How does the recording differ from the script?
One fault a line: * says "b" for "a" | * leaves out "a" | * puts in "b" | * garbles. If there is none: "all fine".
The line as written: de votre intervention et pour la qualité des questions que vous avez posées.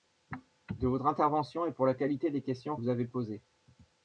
* leaves out "que"